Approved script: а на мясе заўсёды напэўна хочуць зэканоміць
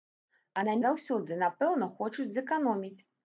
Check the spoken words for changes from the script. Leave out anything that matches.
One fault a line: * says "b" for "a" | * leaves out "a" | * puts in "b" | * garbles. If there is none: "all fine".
* leaves out "мясе"